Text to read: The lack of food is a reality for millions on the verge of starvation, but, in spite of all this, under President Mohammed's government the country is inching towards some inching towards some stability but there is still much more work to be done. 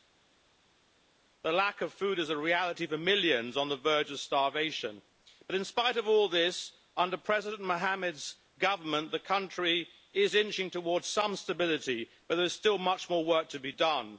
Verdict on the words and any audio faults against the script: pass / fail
fail